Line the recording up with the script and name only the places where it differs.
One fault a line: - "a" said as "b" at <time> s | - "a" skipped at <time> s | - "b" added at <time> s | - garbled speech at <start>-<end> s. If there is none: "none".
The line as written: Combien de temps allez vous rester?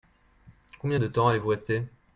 none